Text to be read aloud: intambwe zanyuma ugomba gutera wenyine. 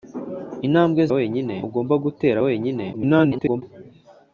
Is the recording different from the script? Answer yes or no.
yes